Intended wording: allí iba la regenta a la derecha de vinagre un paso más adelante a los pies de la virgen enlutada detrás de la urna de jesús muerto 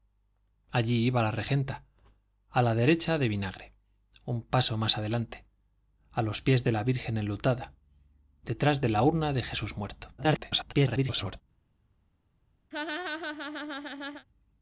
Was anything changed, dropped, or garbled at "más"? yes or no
no